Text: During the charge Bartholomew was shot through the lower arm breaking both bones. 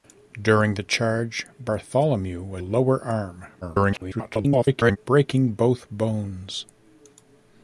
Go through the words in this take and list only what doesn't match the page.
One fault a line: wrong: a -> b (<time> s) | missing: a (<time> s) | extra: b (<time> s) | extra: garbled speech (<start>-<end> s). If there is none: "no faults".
missing: shot through the (2.6 s)
extra: garbled speech (3.6-5.0 s)